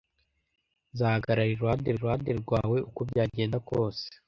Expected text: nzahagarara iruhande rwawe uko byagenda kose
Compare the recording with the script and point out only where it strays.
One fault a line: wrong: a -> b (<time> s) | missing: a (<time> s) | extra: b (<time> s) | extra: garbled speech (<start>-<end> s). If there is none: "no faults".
extra: iruhande (1.9 s)